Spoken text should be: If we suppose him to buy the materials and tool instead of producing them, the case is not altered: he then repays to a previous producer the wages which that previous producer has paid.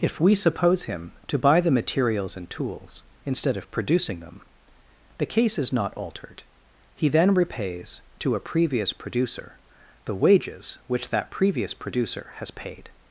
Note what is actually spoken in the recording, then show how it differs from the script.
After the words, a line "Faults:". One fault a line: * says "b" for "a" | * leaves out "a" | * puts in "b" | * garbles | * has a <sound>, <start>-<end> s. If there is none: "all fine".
If we suppose him to buy the materials and tools instead of producing them, the case is not altered: he then repays to a previous producer the wages which that previous producer has paid.
Faults:
* says "tools" for "tool"